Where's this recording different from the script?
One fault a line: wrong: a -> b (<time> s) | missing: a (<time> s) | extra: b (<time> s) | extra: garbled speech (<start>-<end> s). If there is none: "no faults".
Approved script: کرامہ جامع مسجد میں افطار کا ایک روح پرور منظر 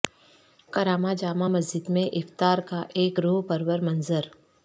no faults